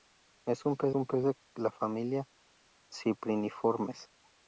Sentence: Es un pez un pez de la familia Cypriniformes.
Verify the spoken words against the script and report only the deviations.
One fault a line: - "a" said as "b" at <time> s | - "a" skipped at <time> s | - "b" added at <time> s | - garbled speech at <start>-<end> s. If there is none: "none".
none